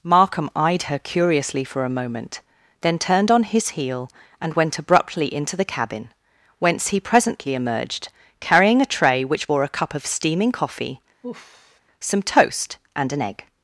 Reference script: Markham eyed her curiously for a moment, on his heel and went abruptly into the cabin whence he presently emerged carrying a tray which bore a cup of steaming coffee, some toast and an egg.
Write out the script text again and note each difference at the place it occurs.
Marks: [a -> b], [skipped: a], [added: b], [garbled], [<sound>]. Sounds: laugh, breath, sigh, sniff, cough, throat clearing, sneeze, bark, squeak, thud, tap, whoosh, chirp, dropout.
Markham eyed her curiously for a moment, [added: then turned] on his heel and went abruptly into the cabin whence he presently emerged carrying a tray which bore a cup of steaming coffee, [sigh] some toast and an egg.